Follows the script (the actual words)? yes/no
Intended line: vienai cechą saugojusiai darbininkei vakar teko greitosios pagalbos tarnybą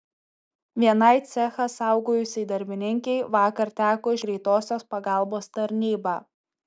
yes